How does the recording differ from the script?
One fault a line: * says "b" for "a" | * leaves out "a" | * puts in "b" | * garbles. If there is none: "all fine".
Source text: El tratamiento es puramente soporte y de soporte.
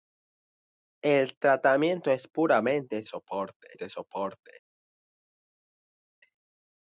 all fine